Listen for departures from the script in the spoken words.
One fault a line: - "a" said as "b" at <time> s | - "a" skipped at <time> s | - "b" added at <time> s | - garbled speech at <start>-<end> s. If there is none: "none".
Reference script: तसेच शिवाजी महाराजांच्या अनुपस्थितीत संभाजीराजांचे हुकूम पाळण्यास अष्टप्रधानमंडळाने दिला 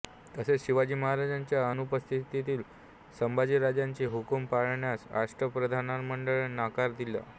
- "नकार" added at 6.5 s